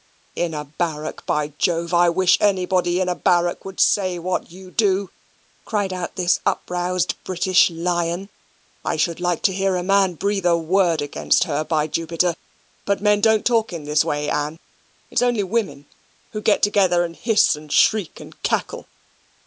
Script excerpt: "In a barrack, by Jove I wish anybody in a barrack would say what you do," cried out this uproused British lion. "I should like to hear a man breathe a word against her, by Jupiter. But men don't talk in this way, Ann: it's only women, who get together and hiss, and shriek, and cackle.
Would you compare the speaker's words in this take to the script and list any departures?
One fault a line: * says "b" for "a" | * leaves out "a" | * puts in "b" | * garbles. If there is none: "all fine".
all fine